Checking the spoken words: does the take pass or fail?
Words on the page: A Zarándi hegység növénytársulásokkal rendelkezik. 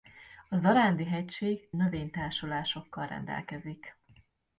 pass